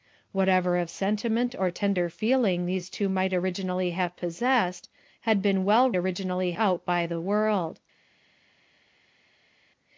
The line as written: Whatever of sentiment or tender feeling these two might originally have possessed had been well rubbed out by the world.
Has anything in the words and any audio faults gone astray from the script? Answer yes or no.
yes